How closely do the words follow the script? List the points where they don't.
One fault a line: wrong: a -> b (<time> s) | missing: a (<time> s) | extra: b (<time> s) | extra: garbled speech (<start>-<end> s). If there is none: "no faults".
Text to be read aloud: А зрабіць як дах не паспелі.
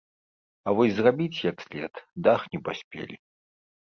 extra: вось (0.8 s)
extra: след (1.6 s)